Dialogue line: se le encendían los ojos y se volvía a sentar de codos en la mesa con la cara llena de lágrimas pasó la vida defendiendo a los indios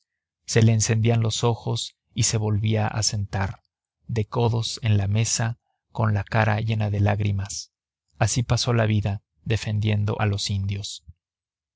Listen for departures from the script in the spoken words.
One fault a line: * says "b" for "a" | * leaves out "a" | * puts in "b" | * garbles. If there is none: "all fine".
* puts in "así"